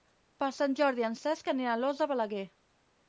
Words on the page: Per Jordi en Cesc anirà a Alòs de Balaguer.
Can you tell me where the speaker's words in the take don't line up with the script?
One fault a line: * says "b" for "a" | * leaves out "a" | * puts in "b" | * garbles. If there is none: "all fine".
* puts in "Sant"